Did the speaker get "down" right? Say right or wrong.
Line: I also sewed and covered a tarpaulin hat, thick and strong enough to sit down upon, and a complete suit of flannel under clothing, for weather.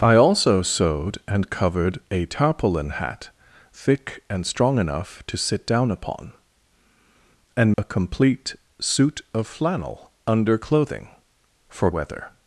right